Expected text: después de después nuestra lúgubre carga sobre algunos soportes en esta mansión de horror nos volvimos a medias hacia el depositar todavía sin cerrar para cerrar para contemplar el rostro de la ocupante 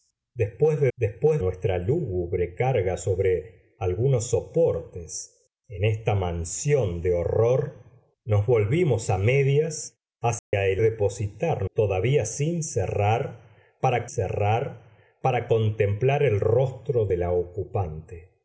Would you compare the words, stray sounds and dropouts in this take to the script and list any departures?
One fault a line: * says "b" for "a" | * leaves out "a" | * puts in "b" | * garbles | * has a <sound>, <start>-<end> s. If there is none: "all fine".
* has a dropout, 10.4-10.5 s